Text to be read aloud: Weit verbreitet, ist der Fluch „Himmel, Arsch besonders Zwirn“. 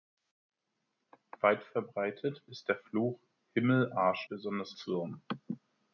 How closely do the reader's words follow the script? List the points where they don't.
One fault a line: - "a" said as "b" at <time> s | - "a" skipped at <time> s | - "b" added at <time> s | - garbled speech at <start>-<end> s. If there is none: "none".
none